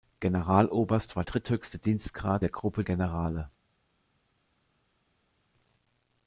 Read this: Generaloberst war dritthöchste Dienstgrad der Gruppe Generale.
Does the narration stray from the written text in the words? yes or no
no